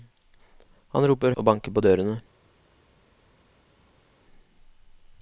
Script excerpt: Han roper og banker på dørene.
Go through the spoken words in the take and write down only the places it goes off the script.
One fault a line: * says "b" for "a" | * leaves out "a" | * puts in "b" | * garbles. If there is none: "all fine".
all fine